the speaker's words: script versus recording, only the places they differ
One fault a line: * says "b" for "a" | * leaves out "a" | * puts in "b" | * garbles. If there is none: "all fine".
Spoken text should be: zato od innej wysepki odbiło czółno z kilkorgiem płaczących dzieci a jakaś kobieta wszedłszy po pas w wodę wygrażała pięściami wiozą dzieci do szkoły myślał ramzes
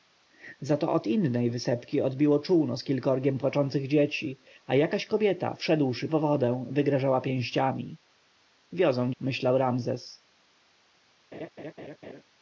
* leaves out "po pas w"
* leaves out "dzieci do szkoły"